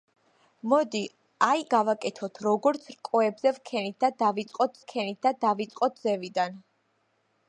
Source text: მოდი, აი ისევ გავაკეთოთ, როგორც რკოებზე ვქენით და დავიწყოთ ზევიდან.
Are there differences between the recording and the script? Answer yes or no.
yes